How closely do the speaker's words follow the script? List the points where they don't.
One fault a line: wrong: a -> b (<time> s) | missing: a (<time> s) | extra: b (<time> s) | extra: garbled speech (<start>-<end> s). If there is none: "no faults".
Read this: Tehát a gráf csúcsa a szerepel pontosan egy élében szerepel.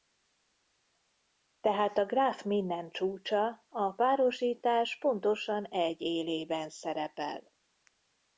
extra: minden (2.4 s)
wrong: szerepel -> párosítás (3.9 s)